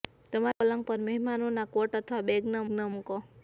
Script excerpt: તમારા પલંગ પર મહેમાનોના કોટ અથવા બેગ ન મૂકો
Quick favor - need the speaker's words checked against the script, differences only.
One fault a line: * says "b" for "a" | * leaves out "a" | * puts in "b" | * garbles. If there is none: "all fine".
* puts in "ન"